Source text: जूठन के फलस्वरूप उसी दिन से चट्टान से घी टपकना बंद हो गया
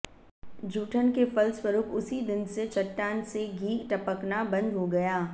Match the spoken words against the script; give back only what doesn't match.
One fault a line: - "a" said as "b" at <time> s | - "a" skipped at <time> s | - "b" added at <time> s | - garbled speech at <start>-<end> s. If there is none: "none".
none